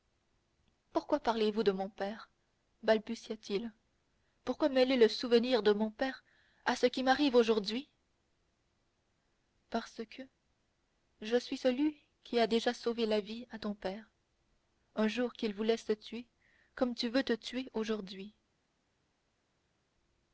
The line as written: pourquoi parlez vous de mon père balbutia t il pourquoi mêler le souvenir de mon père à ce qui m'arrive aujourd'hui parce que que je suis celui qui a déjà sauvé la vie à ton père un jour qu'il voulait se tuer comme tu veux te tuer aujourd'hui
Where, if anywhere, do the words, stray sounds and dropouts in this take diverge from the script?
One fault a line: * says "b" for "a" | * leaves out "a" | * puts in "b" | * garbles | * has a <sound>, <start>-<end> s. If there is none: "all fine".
* leaves out "que"